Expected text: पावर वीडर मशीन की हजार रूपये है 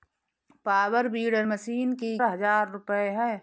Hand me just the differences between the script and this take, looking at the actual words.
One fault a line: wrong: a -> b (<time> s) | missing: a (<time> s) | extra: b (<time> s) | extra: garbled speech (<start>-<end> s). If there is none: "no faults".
no faults